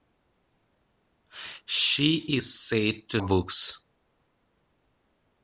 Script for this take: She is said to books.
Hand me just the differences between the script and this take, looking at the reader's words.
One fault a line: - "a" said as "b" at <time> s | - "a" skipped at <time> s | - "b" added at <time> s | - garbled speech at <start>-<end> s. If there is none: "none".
none